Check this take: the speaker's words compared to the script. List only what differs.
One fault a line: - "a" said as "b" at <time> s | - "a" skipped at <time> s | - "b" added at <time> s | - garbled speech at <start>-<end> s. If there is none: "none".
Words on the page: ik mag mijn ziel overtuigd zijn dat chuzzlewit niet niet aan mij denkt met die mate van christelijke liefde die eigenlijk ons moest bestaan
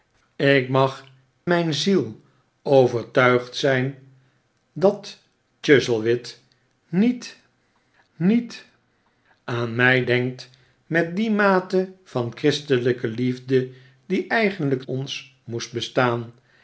none